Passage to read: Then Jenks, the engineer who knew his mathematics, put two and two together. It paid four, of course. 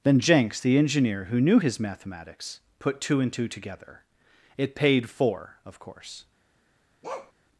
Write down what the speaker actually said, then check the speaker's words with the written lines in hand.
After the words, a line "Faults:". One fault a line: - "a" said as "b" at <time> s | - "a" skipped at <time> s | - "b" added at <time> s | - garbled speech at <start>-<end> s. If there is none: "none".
Then Jenks, the engineer who knew his mathematics, put two and two together. It paid four, of course.
Faults:
none